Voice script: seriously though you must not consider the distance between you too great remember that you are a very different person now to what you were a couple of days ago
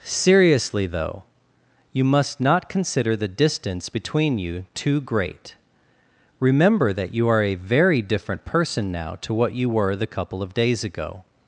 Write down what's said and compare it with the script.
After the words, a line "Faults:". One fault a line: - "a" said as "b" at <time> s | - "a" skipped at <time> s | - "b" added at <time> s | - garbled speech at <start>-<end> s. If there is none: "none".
seriously though you must not consider the distance between you too great remember that you are a very different person now to what you were the couple of days ago
Faults:
- "a" said as "the" at 9.9 s